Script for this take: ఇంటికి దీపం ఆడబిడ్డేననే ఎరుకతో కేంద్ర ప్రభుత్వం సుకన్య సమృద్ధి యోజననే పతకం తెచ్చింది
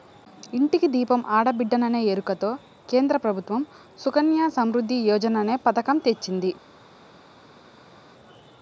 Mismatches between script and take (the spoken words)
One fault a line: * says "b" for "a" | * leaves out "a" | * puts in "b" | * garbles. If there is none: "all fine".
all fine